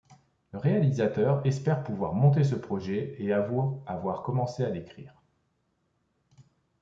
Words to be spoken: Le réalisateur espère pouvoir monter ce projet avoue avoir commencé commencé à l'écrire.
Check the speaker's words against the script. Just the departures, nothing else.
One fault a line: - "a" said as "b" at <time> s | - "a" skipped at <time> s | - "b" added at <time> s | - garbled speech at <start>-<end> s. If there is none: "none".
- "et" added at 3.2 s
- "commencé" skipped at 4.6 s